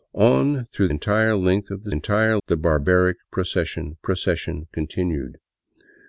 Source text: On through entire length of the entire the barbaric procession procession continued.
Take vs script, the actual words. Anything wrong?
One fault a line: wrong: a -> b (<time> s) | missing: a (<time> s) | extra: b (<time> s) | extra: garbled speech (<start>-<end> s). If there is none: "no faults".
no faults